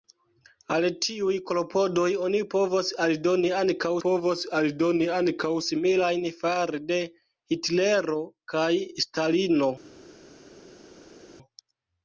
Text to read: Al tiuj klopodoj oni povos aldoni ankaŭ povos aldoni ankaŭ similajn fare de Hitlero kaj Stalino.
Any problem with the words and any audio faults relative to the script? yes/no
no